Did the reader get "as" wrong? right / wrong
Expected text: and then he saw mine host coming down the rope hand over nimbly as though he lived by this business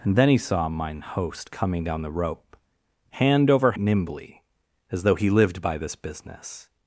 right